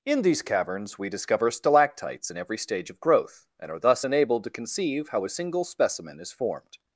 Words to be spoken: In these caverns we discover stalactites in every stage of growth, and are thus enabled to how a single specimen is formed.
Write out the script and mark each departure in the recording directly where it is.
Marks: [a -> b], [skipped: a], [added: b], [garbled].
In these caverns we discover stalactites in every stage of growth, and are thus enabled to [added: conceive] how a single specimen is formed.